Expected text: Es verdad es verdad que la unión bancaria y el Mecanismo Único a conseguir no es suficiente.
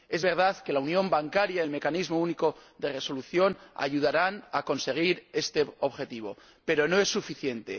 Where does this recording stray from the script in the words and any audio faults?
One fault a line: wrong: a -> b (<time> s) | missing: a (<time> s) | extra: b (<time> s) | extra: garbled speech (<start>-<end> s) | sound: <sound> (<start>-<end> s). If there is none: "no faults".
missing: es verdad (0.6 s)
extra: de Resolución ayudarán (2.8 s)
extra: este objetivo pero (5.3 s)